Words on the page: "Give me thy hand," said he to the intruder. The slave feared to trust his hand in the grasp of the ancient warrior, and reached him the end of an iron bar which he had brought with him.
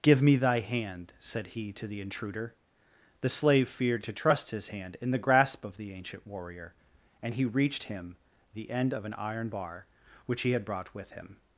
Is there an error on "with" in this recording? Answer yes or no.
no